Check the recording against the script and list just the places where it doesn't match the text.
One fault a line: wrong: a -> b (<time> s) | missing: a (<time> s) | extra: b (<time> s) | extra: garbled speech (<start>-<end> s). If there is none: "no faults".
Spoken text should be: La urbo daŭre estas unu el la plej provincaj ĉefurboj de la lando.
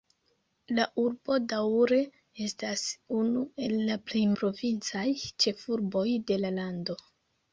no faults